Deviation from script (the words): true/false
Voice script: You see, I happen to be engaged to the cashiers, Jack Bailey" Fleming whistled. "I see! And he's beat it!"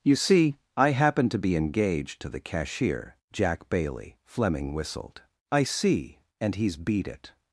true